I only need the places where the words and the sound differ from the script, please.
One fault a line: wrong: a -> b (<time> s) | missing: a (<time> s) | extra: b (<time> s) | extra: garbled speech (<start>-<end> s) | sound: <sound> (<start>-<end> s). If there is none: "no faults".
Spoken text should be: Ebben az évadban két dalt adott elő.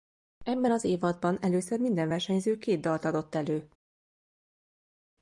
extra: először minden versenyző (1.4 s)